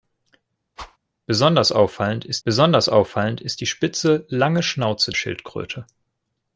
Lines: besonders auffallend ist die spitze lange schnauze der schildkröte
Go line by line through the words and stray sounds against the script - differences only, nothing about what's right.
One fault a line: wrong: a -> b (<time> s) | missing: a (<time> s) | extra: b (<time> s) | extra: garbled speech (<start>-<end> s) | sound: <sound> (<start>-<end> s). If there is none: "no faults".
sound: whoosh (0.8-1.0 s)
extra: besonders auffallend ist (2.4 s)
missing: der (5.1 s)